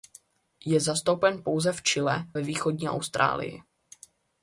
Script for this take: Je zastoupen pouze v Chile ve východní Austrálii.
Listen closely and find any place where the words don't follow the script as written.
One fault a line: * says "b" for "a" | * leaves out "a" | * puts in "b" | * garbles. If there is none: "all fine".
all fine